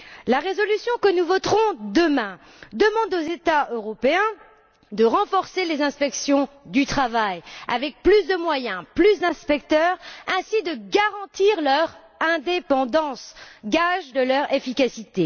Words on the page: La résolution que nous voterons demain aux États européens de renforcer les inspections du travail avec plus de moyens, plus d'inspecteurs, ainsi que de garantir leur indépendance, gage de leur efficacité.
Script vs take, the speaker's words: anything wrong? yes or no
yes